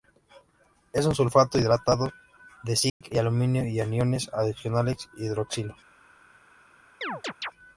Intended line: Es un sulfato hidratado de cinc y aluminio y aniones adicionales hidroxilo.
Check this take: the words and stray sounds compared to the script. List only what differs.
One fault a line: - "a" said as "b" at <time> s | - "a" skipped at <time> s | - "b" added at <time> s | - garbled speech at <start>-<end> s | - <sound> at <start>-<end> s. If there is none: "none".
- dropout at 2.9-3.0 s
- chirp at 7.0-7.5 s